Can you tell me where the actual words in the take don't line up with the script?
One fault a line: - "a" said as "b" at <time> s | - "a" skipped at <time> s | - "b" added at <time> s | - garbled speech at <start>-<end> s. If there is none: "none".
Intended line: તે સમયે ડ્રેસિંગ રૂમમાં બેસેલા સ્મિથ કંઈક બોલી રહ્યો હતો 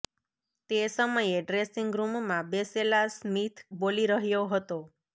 - "કંઈક" skipped at 3.6 s